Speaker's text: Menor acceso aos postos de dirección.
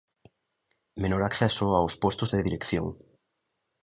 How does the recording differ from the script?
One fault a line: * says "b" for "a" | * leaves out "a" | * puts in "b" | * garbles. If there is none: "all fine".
all fine